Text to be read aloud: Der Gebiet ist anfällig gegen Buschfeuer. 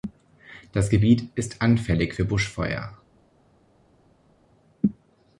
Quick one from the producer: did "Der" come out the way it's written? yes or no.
no